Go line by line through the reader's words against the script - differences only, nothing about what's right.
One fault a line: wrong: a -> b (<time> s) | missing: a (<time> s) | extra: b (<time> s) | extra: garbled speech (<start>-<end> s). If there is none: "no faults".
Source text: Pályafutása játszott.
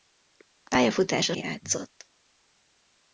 no faults